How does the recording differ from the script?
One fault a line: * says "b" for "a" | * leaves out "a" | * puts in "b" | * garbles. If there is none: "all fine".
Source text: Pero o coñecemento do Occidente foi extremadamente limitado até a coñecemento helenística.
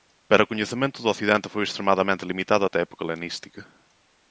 * says "época" for "coñecemento"